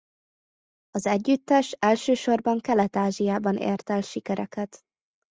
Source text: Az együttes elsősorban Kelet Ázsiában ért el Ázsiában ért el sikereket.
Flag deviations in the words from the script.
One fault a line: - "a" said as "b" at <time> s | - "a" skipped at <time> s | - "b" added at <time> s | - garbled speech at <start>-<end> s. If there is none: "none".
- "Ázsiában ért el" skipped at 4.0 s